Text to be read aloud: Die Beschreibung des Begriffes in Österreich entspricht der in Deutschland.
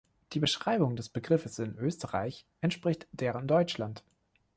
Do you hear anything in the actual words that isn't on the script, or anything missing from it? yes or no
no